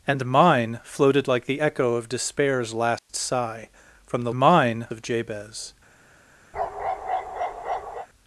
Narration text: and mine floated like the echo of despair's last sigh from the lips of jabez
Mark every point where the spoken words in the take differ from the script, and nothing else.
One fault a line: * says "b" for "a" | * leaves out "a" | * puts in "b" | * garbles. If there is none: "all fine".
* says "mine" for "lips"